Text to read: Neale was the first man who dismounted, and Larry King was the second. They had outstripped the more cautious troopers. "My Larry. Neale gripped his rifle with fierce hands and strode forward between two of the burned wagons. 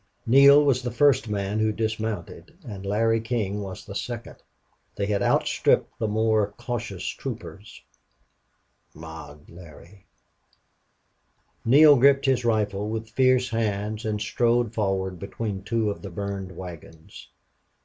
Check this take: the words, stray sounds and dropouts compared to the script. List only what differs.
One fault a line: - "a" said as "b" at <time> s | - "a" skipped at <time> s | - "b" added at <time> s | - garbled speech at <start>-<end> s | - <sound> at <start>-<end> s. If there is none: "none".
none